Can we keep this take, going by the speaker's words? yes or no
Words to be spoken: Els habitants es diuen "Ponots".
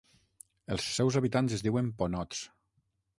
no